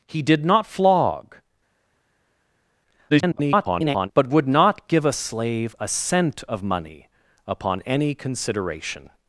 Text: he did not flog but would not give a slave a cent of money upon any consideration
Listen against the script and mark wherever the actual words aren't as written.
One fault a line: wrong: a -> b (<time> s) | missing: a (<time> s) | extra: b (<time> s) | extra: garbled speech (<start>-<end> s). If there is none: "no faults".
extra: garbled speech (3.1-4.1 s)